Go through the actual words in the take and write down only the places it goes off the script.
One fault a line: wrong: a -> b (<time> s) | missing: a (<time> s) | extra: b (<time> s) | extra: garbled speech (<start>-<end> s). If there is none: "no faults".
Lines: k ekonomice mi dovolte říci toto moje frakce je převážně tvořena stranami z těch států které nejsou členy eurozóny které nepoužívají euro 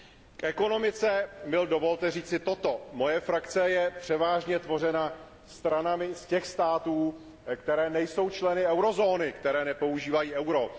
no faults